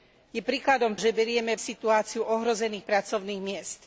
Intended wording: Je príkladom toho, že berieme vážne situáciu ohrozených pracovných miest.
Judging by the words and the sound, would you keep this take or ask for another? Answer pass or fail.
fail